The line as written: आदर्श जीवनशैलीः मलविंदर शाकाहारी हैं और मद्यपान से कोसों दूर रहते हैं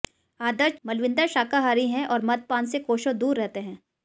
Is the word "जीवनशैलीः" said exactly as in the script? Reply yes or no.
no